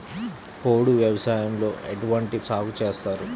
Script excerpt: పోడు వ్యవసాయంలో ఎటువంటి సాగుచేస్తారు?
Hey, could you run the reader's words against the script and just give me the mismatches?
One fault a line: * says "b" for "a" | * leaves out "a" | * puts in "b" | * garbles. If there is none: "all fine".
all fine